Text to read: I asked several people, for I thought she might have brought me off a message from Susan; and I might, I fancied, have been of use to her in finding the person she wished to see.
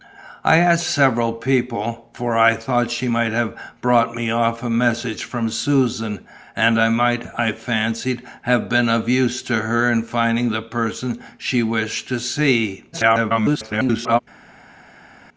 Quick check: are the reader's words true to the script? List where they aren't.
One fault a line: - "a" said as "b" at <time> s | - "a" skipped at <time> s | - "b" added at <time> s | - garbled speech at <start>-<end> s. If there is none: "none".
- garbled speech at 12.9-14.2 s